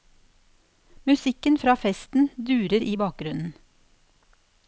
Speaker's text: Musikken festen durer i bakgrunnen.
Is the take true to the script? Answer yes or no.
no